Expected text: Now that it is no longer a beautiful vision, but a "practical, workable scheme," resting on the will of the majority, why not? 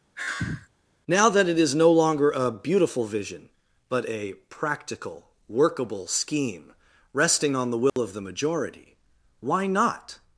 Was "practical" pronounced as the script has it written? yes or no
yes